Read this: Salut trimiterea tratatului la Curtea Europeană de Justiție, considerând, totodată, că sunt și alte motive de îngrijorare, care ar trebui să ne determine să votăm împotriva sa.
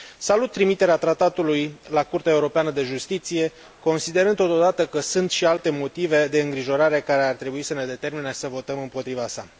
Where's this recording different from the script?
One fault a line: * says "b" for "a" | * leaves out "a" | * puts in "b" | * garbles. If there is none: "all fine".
all fine